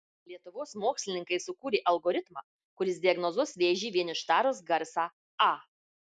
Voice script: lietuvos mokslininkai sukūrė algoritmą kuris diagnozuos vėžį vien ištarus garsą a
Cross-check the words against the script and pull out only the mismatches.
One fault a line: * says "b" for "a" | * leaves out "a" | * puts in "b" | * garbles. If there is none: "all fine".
all fine